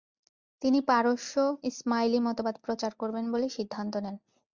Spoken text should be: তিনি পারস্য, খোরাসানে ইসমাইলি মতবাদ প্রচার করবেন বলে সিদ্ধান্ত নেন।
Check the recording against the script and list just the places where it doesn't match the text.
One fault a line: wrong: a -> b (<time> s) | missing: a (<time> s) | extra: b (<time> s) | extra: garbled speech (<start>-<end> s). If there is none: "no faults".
missing: খোরাসানে (1.3 s)